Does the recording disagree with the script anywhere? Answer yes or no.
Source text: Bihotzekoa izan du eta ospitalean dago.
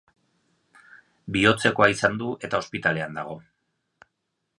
no